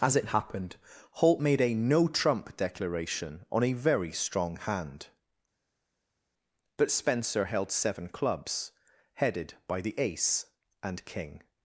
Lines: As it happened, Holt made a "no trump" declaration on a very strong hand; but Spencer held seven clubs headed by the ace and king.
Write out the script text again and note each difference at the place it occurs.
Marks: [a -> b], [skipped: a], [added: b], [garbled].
As it happened, Holt made a "no trump" declaration on a very strong hand; but Spencer held seven clubs headed by the ace and king.